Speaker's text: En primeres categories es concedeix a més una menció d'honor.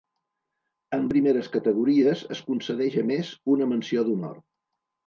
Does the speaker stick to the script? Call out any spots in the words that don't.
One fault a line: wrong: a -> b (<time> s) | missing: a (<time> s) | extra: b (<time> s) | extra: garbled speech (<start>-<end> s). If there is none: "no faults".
no faults